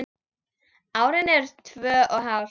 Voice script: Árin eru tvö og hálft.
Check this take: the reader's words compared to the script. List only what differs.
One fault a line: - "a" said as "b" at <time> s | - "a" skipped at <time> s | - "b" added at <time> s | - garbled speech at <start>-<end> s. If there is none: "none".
none